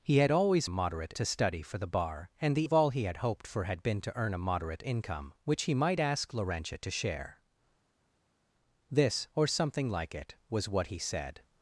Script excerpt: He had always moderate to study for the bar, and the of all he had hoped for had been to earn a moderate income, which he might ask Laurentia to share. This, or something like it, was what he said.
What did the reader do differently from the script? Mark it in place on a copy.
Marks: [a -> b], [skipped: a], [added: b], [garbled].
He had always moderate to study for the bar, and the of all he had hoped for had been to earn a moderate income, which he might ask Laurentia to share. This, or something like it, was what he said.